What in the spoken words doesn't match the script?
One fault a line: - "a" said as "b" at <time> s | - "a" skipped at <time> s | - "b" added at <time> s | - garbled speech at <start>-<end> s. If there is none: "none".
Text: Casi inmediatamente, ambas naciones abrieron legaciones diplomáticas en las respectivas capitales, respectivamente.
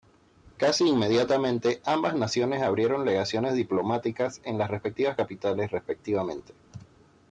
none